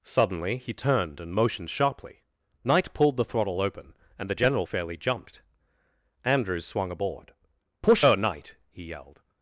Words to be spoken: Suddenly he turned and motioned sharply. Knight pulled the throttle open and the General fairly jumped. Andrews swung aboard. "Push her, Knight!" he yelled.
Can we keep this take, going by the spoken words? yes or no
yes